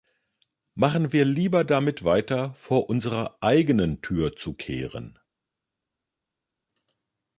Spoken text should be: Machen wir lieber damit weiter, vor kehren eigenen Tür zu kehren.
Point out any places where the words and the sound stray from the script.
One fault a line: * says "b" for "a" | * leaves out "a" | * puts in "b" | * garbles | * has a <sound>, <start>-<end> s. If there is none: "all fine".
* says "unserer" for "kehren"